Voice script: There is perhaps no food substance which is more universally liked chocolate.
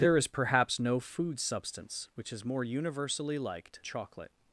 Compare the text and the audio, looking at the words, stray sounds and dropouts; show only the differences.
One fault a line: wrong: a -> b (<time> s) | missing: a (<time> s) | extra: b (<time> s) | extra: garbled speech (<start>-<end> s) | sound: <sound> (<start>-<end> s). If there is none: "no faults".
no faults